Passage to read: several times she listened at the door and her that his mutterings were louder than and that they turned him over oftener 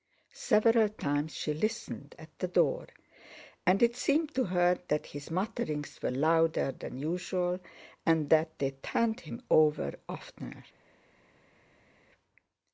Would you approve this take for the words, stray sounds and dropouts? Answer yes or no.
no